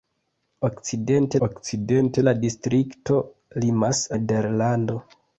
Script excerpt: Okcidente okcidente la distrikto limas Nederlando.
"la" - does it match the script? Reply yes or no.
yes